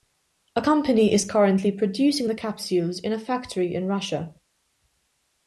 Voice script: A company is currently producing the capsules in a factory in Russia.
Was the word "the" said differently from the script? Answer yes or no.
no